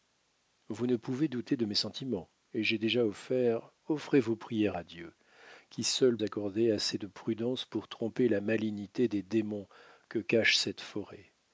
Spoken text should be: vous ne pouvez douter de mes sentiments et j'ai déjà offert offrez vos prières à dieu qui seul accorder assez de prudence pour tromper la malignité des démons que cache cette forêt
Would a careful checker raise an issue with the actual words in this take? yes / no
no